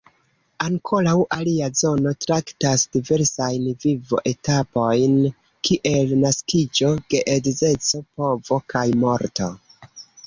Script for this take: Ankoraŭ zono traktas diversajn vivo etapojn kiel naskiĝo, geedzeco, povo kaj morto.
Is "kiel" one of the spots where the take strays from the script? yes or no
no